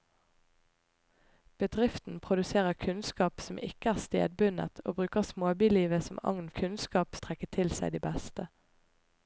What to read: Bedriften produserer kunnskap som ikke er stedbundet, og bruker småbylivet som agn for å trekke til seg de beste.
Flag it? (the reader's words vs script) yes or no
yes